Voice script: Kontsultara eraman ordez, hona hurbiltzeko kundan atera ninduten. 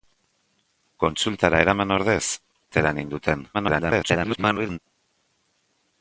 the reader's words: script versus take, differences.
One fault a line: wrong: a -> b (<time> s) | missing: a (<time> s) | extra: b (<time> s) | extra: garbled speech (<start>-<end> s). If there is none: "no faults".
missing: hona hurbiltzeko kundan (2.2 s)
extra: garbled speech (3.5-4.8 s)